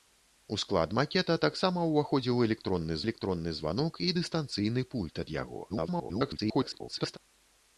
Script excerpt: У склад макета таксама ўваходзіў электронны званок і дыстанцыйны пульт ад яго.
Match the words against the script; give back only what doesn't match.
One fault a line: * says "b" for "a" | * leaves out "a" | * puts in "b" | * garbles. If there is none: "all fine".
* puts in "электронны"
* garbles